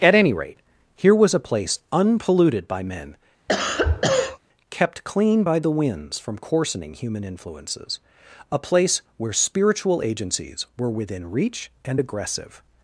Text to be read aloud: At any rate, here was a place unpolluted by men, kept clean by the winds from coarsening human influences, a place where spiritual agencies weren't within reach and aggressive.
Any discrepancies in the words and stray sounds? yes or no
yes